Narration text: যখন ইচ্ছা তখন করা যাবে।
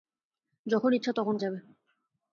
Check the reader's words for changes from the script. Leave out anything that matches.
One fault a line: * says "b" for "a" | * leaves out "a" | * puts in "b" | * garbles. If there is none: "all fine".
* leaves out "করা"